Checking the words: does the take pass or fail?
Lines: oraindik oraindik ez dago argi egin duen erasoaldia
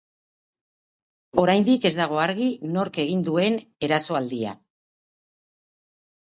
fail